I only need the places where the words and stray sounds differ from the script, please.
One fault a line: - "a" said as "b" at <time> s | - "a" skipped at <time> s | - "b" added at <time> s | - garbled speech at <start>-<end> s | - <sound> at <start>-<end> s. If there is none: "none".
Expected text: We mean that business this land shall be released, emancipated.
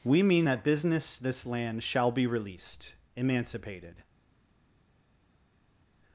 none